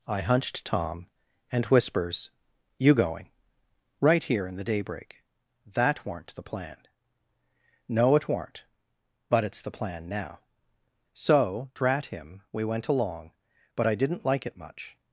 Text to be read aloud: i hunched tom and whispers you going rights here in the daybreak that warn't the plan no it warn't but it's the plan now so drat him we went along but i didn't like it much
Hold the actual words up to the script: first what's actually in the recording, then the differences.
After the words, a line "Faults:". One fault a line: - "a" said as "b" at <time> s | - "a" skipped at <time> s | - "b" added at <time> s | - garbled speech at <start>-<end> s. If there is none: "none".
i hunched tom and whispers you going right here in the daybreak that warn't the plan no it warn't but it's the plan now so drat him we went along but i didn't like it much
Faults:
- "rights" said as "right" at 4.0 s